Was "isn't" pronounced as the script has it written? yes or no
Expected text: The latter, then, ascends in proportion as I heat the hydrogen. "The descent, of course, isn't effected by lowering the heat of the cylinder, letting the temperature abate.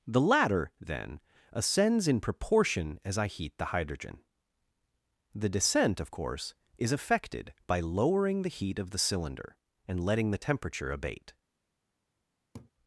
no